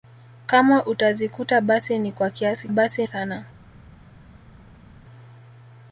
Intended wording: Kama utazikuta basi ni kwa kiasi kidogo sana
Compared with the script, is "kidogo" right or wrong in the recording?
wrong